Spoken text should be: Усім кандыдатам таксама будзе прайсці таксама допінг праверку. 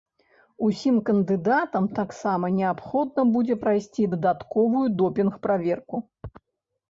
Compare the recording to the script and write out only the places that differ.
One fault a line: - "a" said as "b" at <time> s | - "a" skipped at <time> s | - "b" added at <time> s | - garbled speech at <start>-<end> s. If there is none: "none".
- "неабходна" added at 2.6 s
- "таксама" said as "дадатковую" at 4.1 s